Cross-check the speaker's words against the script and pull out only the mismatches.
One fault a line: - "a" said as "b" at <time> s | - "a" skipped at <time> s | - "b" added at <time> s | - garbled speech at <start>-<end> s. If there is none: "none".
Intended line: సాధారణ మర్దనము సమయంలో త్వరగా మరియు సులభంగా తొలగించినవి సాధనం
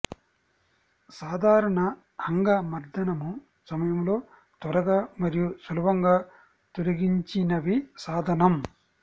- "అంగ" added at 2.3 s